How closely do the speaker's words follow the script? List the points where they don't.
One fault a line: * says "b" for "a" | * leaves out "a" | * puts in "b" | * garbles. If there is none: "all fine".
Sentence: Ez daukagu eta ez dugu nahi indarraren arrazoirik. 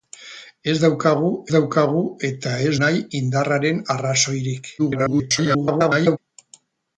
* puts in "daukagu"
* leaves out "dugu"
* garbles